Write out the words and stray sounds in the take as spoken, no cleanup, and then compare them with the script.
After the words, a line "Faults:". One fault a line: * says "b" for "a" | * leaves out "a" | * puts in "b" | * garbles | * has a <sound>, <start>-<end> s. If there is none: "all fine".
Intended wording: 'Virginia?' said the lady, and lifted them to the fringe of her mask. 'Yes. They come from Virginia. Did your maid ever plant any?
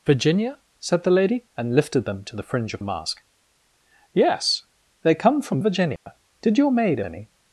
'Virginia?' said the lady, and lifted them to the fringe of mask. 'Yes. They come from Virginia. Did your maid any?
Faults:
* leaves out "her"
* has a dropout, 6.0-6.1 s
* leaves out "ever plant"